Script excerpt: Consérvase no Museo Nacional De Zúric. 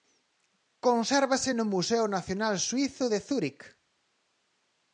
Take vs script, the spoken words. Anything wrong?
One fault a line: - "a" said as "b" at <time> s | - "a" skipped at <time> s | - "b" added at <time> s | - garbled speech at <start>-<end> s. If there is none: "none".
- "Suízo" added at 2.7 s